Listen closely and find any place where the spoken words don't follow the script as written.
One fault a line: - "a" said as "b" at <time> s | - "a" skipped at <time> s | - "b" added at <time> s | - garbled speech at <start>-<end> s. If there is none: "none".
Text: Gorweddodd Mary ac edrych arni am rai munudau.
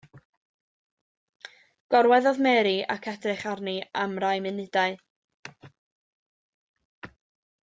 none